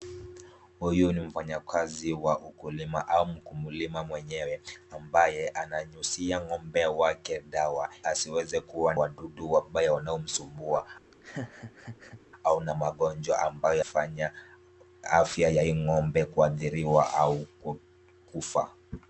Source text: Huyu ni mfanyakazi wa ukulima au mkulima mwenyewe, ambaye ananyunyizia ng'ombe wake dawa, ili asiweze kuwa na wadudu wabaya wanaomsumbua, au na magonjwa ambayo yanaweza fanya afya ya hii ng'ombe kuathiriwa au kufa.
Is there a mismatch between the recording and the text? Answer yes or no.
yes